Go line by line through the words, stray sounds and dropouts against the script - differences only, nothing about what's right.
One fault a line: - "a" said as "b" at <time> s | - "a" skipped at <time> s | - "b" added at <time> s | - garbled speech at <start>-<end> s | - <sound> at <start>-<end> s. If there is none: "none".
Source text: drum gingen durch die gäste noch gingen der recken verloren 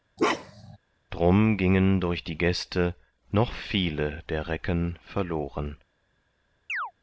- bark at 0.2-0.8 s
- "gingen" said as "viele" at 3.5 s
- chirp at 6.7-6.9 s